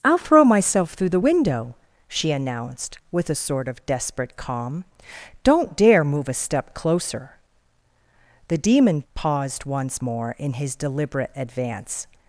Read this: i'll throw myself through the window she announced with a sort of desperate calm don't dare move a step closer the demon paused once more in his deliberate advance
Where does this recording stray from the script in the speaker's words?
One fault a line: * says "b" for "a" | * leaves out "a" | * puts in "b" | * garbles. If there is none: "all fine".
all fine